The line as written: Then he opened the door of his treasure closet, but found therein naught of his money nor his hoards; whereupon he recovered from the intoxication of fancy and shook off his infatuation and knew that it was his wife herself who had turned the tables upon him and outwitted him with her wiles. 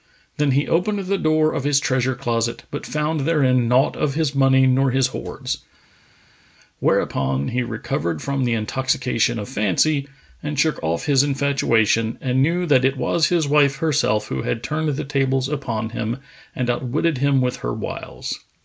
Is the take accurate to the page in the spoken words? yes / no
yes